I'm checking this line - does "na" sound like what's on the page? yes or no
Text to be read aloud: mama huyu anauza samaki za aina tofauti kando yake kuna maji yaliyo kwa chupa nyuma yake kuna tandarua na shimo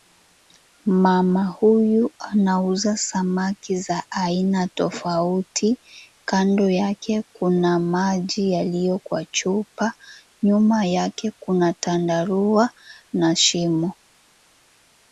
yes